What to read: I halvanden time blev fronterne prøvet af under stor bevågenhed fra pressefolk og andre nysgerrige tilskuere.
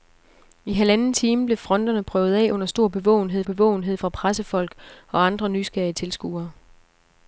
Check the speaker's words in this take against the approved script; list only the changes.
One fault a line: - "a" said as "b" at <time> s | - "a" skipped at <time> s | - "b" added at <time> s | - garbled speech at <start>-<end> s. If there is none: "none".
- "bevågenhed" added at 3.4 s